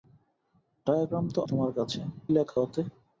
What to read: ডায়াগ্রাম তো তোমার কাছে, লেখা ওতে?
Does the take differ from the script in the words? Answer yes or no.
no